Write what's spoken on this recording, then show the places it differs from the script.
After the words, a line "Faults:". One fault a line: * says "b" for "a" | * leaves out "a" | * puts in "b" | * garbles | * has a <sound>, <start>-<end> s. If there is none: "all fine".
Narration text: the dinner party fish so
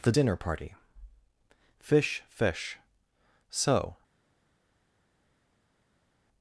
the dinner party fish fish so
Faults:
* puts in "fish"